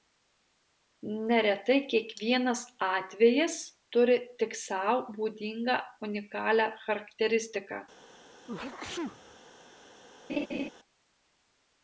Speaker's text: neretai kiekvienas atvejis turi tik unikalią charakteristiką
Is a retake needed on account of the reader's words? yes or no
yes